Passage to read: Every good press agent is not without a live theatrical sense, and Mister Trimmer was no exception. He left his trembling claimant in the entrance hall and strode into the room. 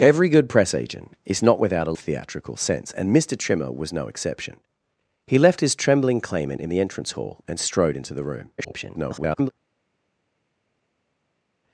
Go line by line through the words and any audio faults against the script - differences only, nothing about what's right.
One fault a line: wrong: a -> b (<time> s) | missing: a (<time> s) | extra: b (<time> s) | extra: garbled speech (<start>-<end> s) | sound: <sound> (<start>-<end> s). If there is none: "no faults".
missing: live (2.0 s)
extra: garbled speech (8.6-9.5 s)